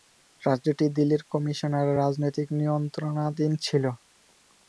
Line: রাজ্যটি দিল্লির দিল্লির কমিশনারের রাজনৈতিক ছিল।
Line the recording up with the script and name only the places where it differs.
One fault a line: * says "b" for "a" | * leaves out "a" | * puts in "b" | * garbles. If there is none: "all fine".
* leaves out "দিল্লির"
* puts in "নিয়ন্ত্রণাধীন"